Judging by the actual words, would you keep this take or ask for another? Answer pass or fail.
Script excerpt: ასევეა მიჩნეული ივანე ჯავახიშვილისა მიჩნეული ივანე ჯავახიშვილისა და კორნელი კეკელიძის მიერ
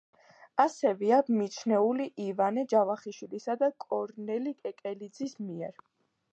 fail